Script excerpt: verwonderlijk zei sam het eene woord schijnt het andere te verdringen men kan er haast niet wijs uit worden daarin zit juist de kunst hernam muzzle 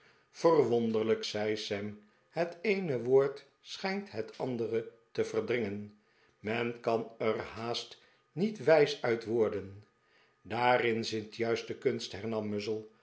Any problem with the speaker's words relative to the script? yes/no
no